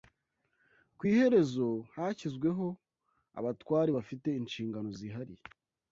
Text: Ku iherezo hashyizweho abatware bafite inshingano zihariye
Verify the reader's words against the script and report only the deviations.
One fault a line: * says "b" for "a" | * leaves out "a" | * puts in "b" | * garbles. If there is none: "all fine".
all fine